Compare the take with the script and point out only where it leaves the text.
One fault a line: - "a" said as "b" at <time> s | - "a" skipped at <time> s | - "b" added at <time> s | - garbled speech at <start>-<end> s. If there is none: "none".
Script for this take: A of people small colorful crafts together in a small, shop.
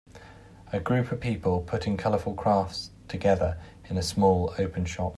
- "group" added at 0.8 s
- "small" said as "putting" at 1.7 s
- "open" added at 4.6 s